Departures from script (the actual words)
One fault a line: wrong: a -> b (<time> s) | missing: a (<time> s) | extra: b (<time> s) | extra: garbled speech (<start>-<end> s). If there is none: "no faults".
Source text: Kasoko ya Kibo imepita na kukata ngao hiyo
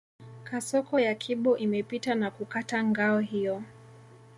no faults